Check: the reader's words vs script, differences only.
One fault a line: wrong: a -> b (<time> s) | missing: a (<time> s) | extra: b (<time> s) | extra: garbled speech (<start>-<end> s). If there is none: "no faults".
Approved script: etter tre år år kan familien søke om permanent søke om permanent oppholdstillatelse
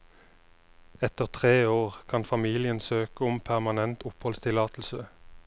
missing: år (2.0 s)
missing: søke om permanent (4.0 s)